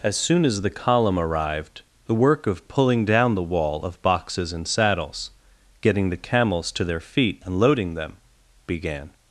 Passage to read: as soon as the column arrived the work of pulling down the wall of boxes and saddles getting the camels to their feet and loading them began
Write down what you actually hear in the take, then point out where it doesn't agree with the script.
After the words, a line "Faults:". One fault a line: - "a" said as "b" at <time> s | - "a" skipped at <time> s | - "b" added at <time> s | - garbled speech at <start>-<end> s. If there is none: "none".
as soon as the column arrived the work of pulling down the wall of boxes and saddles getting the camels to their feet and loading them began
Faults:
none